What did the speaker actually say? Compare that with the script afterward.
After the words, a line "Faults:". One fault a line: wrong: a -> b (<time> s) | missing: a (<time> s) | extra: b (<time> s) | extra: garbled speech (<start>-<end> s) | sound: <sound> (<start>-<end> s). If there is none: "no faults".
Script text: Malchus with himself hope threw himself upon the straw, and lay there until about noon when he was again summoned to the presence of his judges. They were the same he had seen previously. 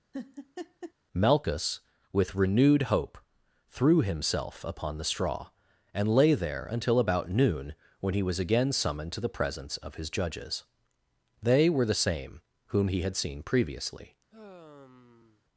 Malchus with renewed hope threw himself upon the straw, and lay there until about noon when he was again summoned to the presence of his judges. They were the same whom he had seen previously.
Faults:
sound: laugh (0.1-0.9 s)
wrong: himself -> renewed (2.4 s)
extra: whom (12.7 s)
sound: sigh (14.3-15.4 s)